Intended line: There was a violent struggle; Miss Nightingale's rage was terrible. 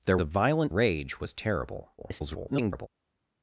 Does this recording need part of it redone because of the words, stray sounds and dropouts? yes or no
yes